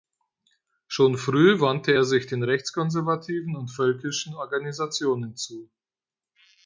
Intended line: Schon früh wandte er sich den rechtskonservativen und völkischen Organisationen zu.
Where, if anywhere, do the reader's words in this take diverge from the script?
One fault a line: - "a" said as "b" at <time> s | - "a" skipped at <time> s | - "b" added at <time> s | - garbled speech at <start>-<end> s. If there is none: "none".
none